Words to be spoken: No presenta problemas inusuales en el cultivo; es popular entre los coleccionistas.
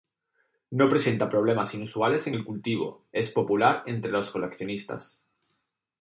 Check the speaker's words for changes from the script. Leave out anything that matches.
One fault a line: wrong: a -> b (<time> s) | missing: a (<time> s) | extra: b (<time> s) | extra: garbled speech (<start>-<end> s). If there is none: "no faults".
no faults